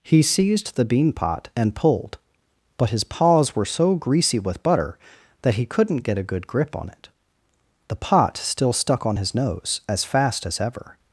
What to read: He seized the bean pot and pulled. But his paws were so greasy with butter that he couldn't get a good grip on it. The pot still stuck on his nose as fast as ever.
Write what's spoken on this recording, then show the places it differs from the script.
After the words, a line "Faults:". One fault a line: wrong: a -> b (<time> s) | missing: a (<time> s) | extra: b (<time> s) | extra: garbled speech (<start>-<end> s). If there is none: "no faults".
He seized the bean pot and pulled. But his paws were so greasy with butter that he couldn't get a good grip on it. The pot still stuck on his nose as fast as ever.
Faults:
no faults